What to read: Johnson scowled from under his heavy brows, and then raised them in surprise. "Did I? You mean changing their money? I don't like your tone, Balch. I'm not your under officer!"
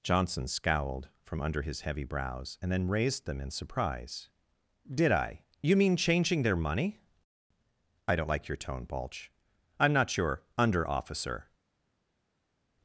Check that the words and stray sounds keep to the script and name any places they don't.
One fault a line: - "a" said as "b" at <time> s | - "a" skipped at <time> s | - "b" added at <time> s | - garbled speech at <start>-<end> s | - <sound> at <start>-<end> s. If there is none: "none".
none